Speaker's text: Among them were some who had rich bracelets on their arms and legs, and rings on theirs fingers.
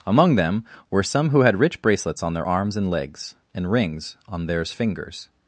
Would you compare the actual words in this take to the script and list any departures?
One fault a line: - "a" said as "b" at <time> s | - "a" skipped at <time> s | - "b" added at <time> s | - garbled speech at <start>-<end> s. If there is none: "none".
none